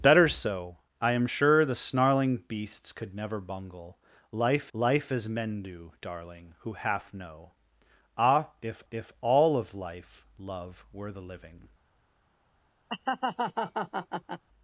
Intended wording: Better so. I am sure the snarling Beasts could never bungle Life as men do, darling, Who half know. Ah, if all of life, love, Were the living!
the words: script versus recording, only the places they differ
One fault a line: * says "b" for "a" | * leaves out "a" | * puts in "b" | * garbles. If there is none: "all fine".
* puts in "Life"
* puts in "if"